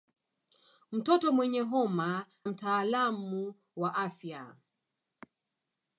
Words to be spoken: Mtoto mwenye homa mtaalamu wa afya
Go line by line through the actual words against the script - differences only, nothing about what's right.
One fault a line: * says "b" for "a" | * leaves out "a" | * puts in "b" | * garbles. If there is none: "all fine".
all fine